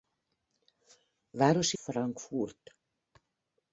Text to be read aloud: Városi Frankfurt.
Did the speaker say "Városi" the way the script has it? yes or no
yes